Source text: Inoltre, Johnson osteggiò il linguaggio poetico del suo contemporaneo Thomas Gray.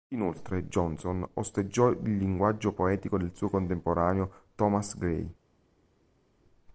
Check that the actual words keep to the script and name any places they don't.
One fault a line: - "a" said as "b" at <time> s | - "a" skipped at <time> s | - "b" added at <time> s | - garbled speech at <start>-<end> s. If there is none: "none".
none